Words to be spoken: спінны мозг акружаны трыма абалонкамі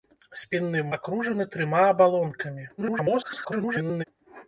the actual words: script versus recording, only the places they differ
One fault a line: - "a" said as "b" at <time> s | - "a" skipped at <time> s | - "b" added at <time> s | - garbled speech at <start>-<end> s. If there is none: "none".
- "мозг" skipped at 0.8 s
- garbled speech at 2.8-4.0 s